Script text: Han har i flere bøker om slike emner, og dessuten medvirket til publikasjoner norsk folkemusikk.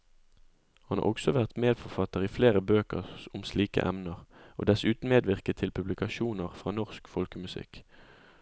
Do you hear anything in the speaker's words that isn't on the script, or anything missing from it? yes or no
yes